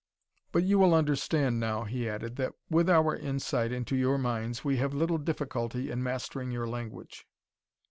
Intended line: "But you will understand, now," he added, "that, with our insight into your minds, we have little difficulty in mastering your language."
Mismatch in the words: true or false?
false